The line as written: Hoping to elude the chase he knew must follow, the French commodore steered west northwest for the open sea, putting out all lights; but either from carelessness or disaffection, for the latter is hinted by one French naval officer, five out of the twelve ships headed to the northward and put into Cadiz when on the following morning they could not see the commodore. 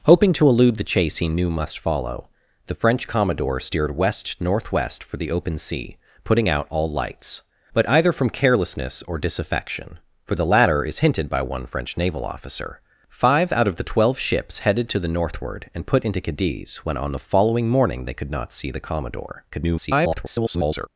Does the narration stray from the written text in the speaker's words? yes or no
yes